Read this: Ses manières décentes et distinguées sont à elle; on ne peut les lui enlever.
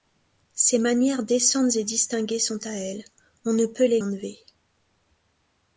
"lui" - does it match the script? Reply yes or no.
no